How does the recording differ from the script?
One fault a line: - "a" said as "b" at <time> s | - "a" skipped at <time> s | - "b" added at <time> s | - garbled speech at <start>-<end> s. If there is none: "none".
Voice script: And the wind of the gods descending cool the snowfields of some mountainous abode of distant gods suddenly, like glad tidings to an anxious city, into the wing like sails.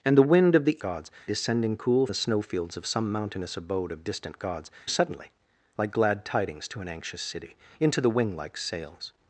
none